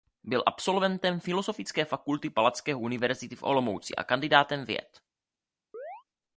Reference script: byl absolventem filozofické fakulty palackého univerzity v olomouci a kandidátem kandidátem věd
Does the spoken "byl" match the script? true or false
true